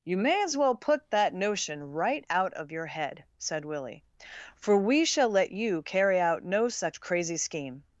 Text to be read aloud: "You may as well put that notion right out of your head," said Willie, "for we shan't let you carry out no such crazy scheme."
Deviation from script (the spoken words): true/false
true